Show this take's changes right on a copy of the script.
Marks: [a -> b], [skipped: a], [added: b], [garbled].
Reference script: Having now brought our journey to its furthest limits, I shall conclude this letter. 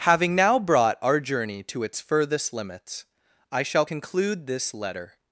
Having now brought our journey to its furthest limits, I shall conclude this letter.